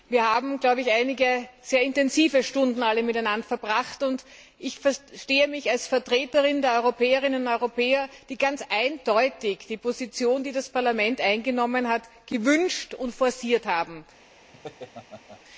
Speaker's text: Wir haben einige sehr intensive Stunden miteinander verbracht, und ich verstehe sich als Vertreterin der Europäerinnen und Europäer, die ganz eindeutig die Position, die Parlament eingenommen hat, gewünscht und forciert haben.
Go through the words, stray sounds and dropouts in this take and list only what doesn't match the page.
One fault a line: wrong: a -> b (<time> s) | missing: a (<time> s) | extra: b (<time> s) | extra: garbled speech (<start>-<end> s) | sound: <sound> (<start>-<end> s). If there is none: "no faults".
wrong: sich -> mich (5.5 s)
extra: das (10.5 s)
sound: laugh (14.5-15.4 s)